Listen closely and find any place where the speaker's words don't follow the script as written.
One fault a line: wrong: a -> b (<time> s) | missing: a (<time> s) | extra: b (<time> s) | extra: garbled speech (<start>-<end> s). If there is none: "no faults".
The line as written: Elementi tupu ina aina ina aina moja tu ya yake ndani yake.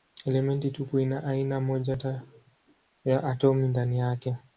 missing: ina aina (1.6 s)
wrong: yake -> atomi (3.2 s)